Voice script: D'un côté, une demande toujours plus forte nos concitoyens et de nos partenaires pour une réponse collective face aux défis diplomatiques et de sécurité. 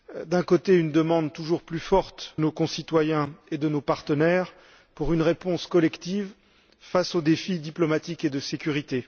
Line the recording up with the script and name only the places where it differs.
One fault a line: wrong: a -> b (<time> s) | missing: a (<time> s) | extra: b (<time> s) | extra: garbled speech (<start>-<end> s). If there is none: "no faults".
no faults